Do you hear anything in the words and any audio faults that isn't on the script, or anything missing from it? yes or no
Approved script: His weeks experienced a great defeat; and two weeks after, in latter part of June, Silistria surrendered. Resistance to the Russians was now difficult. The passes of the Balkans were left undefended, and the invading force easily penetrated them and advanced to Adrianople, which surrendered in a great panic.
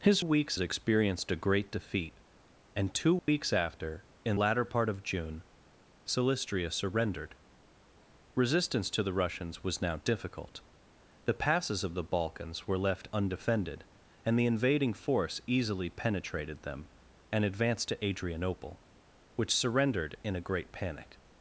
yes